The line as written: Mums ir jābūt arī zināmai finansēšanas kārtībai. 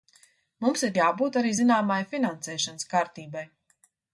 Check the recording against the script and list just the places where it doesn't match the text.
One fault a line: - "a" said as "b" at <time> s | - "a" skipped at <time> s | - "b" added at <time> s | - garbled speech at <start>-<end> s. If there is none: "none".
none